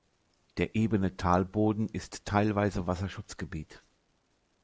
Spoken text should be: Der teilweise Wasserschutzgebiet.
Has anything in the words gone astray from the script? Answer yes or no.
yes